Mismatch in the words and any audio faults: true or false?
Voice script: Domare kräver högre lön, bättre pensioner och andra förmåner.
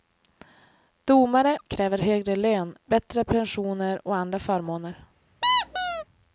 true